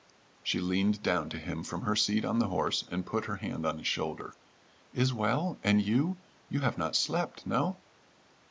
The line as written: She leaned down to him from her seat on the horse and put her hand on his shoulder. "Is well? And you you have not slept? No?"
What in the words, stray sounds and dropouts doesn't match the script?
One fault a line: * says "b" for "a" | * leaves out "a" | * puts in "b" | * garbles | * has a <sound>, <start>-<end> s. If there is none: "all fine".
all fine